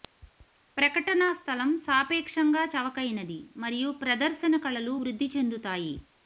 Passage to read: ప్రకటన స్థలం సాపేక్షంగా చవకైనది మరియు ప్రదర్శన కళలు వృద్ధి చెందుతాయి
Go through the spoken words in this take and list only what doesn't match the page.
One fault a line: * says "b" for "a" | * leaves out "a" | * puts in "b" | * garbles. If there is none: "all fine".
all fine